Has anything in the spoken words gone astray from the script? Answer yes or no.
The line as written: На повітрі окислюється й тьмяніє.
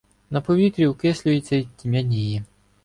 no